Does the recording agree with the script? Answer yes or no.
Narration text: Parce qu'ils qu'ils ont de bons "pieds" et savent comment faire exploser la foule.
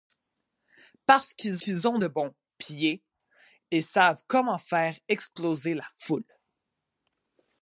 yes